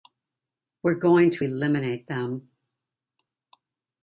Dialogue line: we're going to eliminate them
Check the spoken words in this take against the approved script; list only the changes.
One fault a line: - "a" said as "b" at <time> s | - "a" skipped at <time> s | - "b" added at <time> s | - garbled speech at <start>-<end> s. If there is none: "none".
none